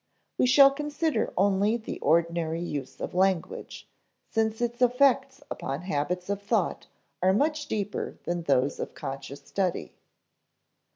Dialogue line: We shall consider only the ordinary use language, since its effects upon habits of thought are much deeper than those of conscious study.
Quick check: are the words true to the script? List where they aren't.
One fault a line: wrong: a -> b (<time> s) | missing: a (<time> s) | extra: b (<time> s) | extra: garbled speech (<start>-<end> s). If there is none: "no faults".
extra: of (3.0 s)